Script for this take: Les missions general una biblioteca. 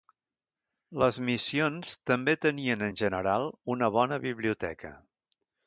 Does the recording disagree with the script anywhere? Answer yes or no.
yes